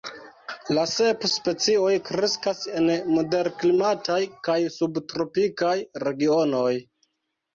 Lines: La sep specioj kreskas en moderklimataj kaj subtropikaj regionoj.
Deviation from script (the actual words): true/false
false